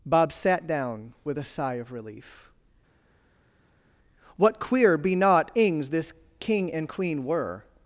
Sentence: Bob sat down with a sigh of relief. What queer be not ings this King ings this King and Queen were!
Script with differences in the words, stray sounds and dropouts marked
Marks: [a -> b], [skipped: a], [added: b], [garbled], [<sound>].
Bob sat down with a sigh of relief. What queer be not ings this King [skipped: ings this King] and Queen were!